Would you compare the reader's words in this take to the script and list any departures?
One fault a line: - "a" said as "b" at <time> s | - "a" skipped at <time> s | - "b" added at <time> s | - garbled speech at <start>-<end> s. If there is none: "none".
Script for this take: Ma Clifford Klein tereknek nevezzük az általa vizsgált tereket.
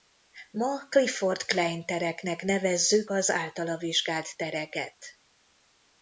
none